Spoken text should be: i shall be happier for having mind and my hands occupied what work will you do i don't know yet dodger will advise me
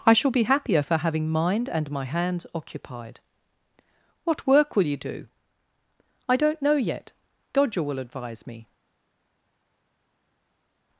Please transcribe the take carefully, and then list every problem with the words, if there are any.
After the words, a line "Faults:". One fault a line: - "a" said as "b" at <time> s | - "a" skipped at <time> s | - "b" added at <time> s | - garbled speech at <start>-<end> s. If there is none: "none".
i shall be happier for having mind and my hands occupied what work will you do i don't know yet dodger will advise me
Faults:
none